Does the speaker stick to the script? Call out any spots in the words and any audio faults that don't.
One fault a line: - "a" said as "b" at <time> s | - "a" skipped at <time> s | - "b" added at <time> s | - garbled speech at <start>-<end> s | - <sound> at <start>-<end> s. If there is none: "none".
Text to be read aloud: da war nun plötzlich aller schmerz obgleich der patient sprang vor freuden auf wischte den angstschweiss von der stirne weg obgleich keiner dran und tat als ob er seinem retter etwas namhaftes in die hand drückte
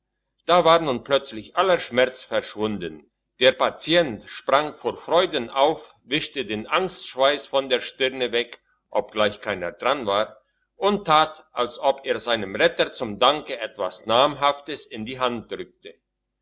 - "obgleich" said as "verschwunden" at 2.2 s
- "war" added at 10.1 s
- "zum danke" added at 12.9 s